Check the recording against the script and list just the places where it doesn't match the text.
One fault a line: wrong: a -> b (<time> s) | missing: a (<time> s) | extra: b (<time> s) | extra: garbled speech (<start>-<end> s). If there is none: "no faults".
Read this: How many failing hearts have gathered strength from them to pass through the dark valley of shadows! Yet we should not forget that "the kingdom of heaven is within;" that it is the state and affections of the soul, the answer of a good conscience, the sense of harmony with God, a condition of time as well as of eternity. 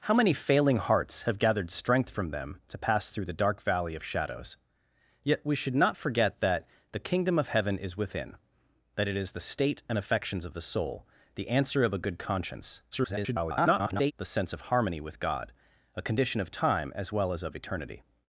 extra: garbled speech (12.9-14.1 s)